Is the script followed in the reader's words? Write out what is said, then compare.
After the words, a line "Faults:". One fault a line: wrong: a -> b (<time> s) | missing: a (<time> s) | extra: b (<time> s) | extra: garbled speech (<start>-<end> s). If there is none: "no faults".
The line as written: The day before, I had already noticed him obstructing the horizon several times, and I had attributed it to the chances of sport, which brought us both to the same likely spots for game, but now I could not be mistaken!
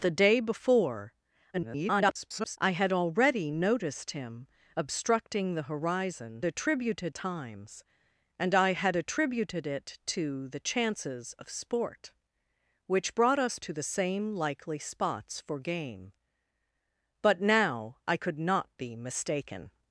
The day before, [garbled] I had already noticed him obstructing the horizon attributed times, and I had attributed it to the chances of sport, which brought us to the same likely spots for game, but now I could not be mistaken!
Faults:
extra: garbled speech (1.5-2.6 s)
wrong: several -> attributed (6.4 s)
missing: both (13.6 s)